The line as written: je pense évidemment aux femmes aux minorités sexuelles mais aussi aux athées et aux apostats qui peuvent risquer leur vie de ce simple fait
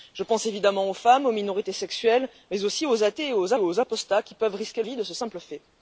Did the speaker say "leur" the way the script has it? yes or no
no